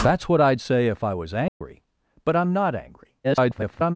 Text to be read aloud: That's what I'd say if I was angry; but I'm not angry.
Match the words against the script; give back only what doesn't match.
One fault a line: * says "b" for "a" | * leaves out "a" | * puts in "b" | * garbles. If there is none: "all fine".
* garbles